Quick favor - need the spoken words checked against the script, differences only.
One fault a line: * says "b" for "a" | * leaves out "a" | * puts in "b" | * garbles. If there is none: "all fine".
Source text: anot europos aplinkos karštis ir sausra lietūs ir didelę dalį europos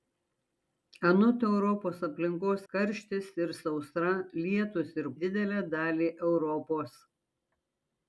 all fine